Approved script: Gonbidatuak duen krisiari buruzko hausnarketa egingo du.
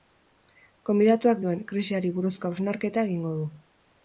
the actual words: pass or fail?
pass